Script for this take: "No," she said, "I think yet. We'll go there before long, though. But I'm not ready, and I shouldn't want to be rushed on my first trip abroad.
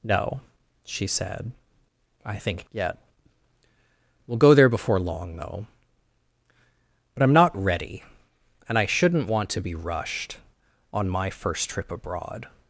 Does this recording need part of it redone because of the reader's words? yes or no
no